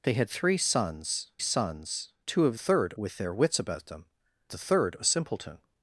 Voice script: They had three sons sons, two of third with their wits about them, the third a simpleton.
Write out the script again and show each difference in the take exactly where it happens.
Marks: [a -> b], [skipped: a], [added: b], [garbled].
They had three sons sons, two of third with their wits about them, the third a simpleton.